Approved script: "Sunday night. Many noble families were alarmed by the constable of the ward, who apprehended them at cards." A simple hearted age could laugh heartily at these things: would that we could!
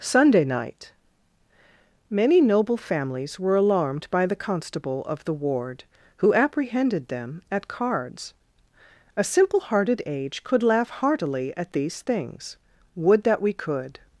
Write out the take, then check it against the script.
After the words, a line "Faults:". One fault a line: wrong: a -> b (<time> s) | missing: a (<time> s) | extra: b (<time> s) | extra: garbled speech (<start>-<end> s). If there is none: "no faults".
"Sunday night. Many noble families were alarmed by the constable of the ward, who apprehended them at cards." A simple hearted age could laugh heartily at these things: would that we could!
Faults:
no faults